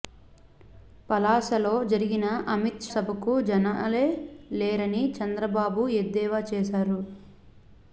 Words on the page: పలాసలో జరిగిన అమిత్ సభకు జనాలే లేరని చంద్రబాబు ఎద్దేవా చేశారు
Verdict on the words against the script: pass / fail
pass